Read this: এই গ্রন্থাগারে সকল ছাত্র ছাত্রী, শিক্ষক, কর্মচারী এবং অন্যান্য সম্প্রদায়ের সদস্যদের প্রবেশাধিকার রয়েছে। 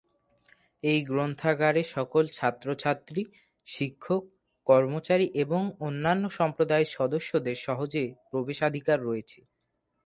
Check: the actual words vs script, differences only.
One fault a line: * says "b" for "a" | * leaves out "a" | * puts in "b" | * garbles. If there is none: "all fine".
* puts in "সহজে"